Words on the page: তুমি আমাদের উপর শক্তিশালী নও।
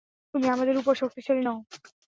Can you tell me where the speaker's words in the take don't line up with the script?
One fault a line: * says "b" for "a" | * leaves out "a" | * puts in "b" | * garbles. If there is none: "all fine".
all fine